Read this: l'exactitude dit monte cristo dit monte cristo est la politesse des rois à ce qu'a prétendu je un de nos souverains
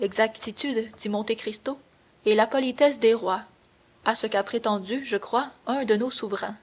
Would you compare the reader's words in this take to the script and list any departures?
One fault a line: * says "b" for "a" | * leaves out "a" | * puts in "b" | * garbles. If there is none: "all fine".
* leaves out "dit monte cristo"
* puts in "crois"